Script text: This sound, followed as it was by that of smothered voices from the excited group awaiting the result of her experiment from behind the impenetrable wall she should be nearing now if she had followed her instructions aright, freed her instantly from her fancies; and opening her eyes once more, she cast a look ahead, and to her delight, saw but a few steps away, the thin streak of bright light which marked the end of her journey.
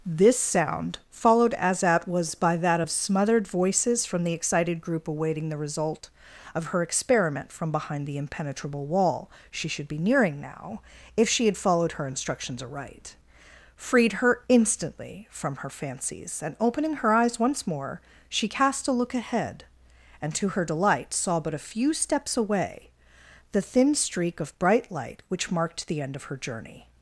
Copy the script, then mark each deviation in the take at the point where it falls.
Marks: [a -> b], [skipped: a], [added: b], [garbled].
This sound, followed as [it -> at] was by that of smothered voices from the excited group awaiting the result of her experiment from behind the impenetrable wall she should be nearing now if she had followed her instructions aright, freed her instantly from her fancies; and opening her eyes once more, she cast a look ahead, and to her delight, saw but a few steps away, the thin streak of bright light which marked the end of her journey.